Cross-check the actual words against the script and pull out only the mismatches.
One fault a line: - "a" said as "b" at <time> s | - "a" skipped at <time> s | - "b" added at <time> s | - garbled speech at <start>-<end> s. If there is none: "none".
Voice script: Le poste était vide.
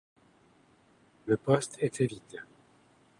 none